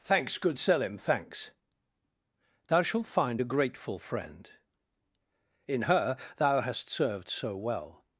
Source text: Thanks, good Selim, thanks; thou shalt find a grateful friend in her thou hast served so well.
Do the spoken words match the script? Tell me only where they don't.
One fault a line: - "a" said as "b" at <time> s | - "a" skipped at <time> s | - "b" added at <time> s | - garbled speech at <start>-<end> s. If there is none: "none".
none